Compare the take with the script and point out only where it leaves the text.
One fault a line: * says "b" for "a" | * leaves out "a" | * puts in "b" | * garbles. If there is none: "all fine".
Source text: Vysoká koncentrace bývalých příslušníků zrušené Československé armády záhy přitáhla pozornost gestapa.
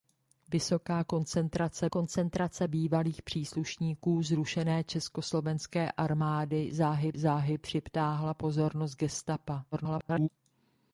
* puts in "koncentrace"
* puts in "záhy"
* garbles